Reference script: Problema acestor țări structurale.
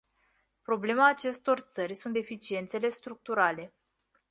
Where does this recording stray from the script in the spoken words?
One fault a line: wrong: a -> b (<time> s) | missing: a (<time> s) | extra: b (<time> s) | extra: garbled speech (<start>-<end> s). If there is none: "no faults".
extra: sunt deficiențele (1.9 s)